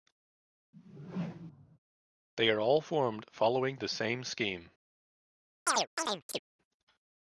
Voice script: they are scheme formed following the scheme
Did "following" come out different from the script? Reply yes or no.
no